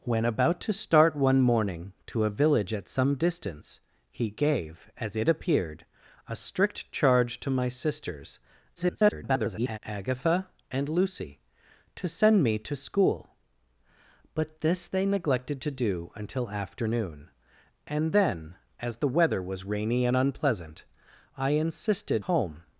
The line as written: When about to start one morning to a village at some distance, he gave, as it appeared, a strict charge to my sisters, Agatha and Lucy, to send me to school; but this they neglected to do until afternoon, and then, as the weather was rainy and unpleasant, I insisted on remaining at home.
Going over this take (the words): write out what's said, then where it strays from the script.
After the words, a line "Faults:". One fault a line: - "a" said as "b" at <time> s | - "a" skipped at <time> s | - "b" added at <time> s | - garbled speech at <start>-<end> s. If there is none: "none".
When about to start one morning to a village at some distance, he gave, as it appeared, a strict charge to my sisters, [garbled] Agatha and Lucy, to send me to school; but this they neglected to do until afternoon, and then, as the weather was rainy and unpleasant, I insisted home.
Faults:
- garbled speech at 8.7-9.8 s
- "on remaining at" skipped at 22.2 s